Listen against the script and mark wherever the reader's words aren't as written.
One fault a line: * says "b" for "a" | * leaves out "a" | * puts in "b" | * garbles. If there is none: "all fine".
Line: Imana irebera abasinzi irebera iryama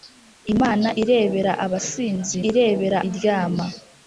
all fine